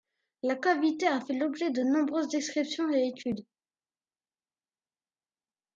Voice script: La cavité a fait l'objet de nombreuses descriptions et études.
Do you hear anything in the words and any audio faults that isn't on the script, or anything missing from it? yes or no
no